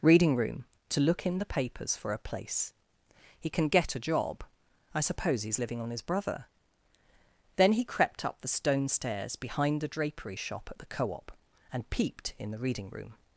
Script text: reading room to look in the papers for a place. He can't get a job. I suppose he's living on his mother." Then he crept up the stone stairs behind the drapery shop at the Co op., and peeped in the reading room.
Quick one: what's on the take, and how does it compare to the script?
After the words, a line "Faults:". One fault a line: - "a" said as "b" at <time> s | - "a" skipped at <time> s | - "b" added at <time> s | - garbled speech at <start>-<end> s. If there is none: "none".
reading room to look in the papers for a place. He can get a job. I suppose he's living on his brother." Then he crept up the stone stairs behind the drapery shop at the Co op., and peeped in the reading room.
Faults:
- "can't" said as "can" at 3.5 s
- "mother" said as "brother" at 6.0 s